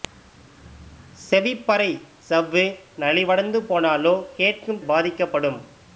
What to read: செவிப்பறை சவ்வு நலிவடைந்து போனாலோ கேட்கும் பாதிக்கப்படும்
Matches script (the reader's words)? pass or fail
pass